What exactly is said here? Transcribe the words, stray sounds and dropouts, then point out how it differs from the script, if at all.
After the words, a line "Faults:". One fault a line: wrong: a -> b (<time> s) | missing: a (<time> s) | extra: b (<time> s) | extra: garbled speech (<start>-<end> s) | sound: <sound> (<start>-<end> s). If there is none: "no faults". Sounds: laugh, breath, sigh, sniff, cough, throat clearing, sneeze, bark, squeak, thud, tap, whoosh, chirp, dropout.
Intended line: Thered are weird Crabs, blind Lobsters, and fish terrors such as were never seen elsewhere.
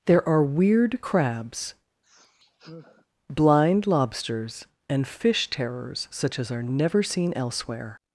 There are weird Crabs, blind Lobsters, and fish terrors such as are never seen elsewhere.
Faults:
wrong: Thered -> There (0.1 s)
sound: sigh (2.0-3.1 s)
wrong: were -> are (6.5 s)